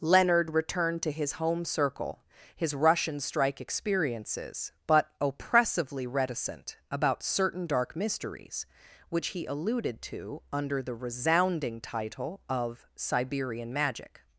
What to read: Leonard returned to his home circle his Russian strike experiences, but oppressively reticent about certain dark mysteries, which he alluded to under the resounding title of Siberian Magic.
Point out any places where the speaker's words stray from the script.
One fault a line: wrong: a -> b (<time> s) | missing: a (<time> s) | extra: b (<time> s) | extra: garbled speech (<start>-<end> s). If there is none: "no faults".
no faults